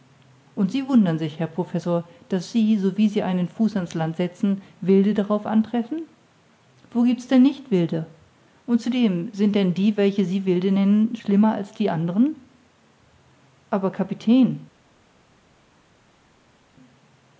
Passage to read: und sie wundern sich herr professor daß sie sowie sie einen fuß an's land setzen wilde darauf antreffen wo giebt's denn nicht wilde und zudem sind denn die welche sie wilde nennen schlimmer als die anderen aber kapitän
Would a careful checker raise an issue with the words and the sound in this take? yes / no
no